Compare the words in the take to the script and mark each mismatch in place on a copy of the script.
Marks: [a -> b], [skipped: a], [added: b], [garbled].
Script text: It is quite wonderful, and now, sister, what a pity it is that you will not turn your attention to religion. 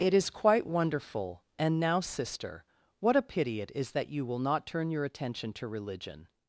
It is quite wonderful, and now, sister, what a pity it is that you will not turn your attention to religion.